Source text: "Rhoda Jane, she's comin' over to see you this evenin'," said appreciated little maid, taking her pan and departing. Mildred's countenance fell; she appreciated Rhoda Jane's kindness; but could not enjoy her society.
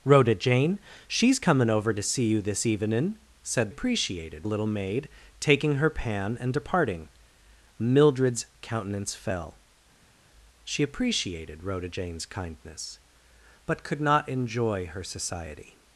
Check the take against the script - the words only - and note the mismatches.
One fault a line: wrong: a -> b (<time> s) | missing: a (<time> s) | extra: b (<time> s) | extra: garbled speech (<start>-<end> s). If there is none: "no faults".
no faults